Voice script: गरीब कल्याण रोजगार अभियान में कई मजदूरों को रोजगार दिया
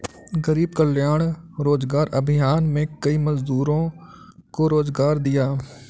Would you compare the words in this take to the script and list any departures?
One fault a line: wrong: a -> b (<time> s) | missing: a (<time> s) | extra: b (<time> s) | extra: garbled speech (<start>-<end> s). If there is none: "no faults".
no faults